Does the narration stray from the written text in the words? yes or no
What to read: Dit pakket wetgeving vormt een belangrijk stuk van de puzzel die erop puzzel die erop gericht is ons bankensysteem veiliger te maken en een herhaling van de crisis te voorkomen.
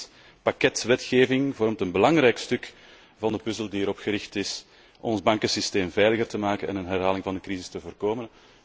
yes